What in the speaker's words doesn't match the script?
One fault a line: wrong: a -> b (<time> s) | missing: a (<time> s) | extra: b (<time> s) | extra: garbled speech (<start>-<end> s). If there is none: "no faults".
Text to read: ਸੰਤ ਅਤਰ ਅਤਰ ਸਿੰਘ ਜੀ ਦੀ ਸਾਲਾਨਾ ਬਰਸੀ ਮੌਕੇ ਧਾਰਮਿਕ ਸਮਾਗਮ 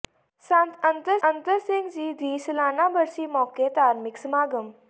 no faults